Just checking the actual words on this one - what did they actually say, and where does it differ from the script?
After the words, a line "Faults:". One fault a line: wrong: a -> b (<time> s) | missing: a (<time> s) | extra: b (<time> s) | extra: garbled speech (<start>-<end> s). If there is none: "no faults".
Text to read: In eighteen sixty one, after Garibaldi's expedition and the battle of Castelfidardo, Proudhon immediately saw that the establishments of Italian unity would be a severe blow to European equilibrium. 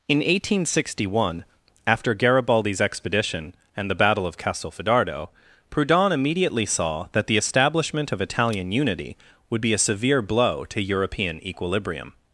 In eighteen sixty one, after Garibaldi's expedition and the battle of Castelfidardo, Proudhon immediately saw that the establishment of Italian unity would be a severe blow to European equilibrium.
Faults:
wrong: establishments -> establishment (7.4 s)